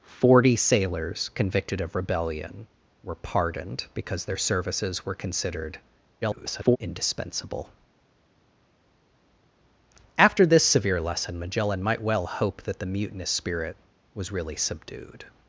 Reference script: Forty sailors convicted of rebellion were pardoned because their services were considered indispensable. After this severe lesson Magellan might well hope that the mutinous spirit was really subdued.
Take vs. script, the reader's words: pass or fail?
fail